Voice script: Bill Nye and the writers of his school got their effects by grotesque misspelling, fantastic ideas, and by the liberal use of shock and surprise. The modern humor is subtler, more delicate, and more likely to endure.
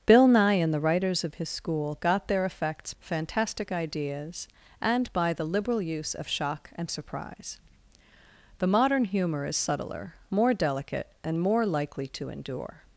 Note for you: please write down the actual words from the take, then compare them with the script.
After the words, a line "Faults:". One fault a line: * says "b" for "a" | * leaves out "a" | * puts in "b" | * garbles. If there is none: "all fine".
Bill Nye and the writers of his school got their effects fantastic ideas, and by the liberal use of shock and surprise. The modern humor is subtler, more delicate, and more likely to endure.
Faults:
* leaves out "by grotesque misspelling"